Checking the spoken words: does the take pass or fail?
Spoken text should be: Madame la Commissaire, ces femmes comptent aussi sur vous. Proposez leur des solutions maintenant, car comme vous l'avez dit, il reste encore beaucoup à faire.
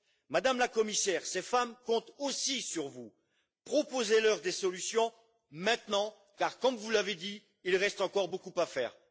pass